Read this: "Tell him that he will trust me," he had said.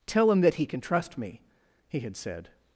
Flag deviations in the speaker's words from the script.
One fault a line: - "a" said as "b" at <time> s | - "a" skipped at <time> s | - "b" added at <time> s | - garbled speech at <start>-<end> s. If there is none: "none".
- "will" said as "can" at 0.7 s